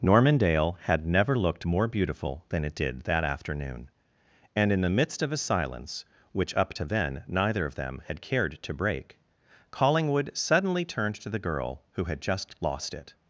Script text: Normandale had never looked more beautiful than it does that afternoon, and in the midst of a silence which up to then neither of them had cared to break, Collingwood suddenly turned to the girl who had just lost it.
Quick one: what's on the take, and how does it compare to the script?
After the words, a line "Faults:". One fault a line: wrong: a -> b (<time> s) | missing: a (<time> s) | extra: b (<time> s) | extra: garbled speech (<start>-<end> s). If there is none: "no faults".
Normandale had never looked more beautiful than it did that afternoon, and in the midst of a silence which up to then neither of them had cared to break, Collingwood suddenly turned to the girl who had just lost it.
Faults:
wrong: does -> did (2.7 s)